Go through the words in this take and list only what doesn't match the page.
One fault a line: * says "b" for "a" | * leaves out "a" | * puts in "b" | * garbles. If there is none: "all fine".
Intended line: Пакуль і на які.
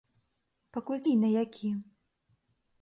all fine